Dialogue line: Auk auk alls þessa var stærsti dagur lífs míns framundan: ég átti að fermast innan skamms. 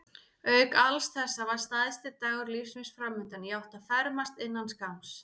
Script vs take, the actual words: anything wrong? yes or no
yes